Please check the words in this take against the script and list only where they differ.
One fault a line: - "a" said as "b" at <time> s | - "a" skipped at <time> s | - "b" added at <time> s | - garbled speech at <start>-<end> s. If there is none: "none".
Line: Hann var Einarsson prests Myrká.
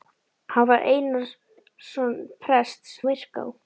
none